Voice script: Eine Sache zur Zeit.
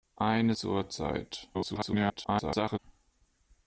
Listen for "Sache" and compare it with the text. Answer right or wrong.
wrong